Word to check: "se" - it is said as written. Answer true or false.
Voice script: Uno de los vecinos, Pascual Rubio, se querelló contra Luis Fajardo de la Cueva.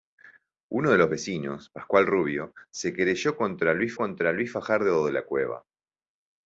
true